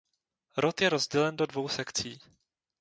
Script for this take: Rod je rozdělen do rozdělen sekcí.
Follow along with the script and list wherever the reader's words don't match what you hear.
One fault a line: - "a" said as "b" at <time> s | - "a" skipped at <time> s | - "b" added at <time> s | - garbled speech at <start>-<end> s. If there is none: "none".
- "rozdělen" said as "dvou" at 1.5 s